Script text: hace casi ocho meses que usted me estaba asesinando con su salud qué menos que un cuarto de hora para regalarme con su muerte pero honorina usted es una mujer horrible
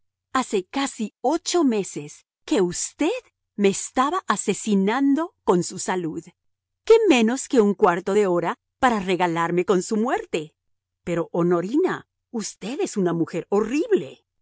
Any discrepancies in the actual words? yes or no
no